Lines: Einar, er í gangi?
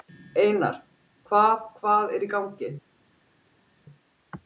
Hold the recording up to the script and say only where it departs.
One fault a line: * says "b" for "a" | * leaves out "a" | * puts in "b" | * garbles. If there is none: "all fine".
* puts in "hvað hvað"